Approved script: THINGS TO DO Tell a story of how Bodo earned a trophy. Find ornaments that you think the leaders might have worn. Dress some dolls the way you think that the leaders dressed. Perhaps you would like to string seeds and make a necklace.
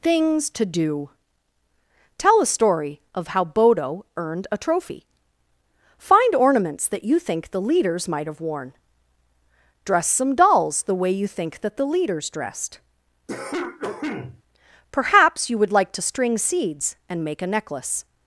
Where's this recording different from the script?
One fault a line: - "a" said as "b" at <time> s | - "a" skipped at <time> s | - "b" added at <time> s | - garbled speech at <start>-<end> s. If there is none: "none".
none